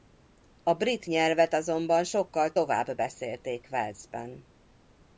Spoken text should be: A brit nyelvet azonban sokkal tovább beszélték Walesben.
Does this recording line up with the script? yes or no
yes